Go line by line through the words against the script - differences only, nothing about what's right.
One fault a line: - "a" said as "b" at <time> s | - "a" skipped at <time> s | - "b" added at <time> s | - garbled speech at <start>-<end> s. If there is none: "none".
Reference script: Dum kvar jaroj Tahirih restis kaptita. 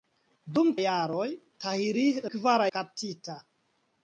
- "kvar" skipped at 0.7 s
- "restis" said as "kvar" at 2.3 s